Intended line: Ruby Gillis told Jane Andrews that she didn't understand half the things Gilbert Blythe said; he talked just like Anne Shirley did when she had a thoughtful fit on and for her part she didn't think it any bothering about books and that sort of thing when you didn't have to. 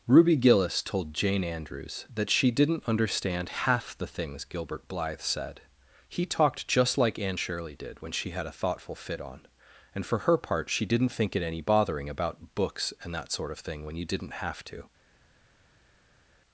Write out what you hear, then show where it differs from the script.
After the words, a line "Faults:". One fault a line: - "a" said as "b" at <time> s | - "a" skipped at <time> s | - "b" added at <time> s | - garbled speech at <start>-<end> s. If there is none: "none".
Ruby Gillis told Jane Andrews that she didn't understand half the things Gilbert Blythe said; he talked just like Anne Shirley did when she had a thoughtful fit on and for her part she didn't think it any bothering about books and that sort of thing when you didn't have to.
Faults:
none